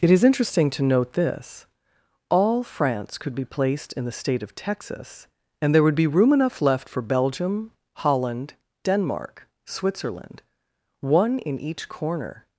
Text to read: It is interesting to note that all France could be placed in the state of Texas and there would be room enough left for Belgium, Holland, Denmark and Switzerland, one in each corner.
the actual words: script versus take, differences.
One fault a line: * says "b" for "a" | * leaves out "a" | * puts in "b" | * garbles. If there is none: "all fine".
* says "this" for "that"
* leaves out "and"